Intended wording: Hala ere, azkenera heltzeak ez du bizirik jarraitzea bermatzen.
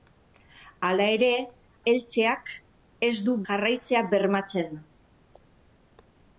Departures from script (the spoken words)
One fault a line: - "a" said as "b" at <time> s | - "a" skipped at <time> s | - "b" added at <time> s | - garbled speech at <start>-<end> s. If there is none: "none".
- "azkenera" skipped at 1.3 s
- "bizirik" skipped at 3.4 s